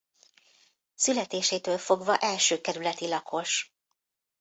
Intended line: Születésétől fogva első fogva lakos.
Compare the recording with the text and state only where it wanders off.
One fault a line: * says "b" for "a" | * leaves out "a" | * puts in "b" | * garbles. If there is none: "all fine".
* says "kerületi" for "fogva"